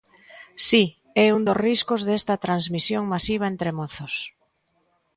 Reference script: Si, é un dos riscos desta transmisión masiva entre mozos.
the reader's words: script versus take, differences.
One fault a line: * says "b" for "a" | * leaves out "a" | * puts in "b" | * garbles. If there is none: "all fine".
all fine